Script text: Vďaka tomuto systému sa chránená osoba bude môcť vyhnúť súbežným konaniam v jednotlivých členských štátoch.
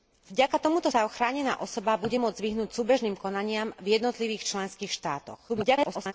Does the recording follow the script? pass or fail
fail